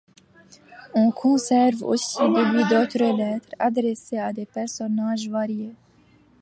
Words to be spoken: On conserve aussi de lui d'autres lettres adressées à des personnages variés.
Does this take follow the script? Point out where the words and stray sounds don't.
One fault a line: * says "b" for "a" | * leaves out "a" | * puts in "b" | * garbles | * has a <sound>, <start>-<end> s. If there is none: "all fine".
all fine